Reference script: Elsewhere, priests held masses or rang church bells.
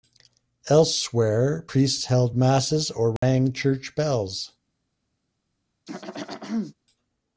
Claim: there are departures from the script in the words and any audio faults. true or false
true